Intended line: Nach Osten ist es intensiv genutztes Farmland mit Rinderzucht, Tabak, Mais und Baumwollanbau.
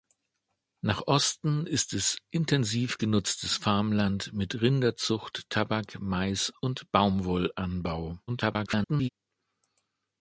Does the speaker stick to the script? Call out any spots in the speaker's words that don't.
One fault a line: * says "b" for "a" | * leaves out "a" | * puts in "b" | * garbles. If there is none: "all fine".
* garbles